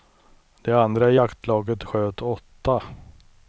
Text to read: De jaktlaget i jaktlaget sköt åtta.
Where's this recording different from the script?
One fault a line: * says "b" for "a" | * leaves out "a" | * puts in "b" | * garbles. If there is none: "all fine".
* says "andra" for "jaktlaget"